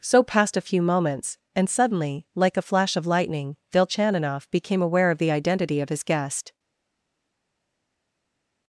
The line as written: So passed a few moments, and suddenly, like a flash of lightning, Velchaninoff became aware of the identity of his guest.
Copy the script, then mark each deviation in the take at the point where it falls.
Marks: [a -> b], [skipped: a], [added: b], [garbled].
So passed a few moments, and suddenly, like a flash of lightning, Velchaninoff became aware of the identity of his guest.